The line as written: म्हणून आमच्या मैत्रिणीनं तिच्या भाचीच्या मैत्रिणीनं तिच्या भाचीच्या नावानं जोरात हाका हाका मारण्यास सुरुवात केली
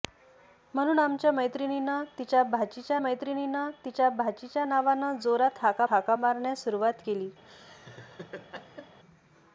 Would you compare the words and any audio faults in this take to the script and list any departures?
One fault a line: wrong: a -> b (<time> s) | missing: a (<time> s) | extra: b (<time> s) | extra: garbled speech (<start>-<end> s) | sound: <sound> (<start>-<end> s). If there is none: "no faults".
sound: laugh (7.4-9.0 s)